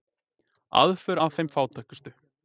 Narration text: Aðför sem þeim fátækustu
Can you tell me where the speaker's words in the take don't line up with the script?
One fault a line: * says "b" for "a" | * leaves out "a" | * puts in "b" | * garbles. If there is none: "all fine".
* says "að" for "sem"